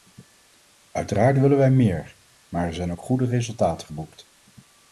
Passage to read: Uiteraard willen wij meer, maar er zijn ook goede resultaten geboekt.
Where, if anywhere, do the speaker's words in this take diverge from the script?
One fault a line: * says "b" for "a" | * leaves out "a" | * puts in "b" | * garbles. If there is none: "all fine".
all fine